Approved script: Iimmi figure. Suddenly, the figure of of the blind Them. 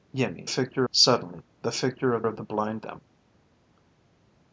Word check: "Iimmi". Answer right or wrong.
right